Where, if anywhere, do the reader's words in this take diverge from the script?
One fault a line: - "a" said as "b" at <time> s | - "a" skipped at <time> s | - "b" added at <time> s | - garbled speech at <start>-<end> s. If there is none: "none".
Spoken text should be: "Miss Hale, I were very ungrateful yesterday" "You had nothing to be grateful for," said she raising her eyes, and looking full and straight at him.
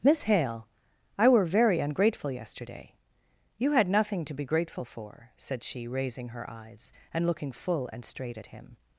none